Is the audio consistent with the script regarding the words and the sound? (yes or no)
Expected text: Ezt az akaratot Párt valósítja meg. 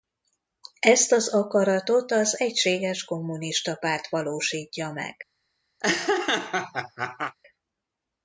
no